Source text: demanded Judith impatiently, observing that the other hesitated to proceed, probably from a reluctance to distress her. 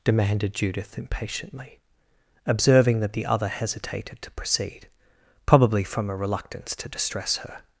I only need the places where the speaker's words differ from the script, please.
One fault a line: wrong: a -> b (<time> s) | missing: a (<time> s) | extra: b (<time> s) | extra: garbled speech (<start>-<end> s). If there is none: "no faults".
no faults